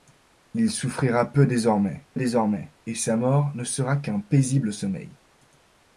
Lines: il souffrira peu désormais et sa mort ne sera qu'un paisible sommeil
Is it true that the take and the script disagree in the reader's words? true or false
true